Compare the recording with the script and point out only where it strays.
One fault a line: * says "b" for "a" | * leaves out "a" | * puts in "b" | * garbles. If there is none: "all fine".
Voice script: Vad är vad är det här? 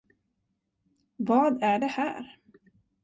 * leaves out "vad är"